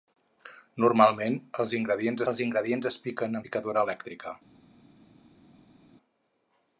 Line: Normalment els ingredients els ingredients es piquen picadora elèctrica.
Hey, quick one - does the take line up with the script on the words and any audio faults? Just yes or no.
yes